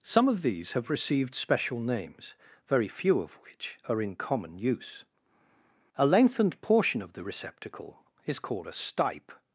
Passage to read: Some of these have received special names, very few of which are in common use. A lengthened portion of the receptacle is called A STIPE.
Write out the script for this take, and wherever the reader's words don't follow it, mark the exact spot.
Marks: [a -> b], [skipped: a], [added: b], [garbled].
Some of these have received special names, very few of which are in common use. A lengthened portion of the receptacle is called A STIPE.